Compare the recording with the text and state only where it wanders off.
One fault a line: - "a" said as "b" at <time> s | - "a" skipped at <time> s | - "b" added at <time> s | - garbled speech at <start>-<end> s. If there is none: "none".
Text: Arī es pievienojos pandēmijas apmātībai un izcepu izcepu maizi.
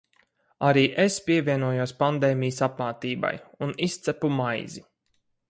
- "izcepu" skipped at 4.3 s